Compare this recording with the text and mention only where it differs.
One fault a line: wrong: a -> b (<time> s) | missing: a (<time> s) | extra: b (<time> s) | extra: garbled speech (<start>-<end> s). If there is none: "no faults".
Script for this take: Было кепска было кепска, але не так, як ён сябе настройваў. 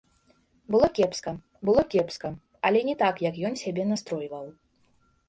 no faults